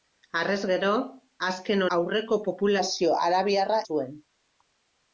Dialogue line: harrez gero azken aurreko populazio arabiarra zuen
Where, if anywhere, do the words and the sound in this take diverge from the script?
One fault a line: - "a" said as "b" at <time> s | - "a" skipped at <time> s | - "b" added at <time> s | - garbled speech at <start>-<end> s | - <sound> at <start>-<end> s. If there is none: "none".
none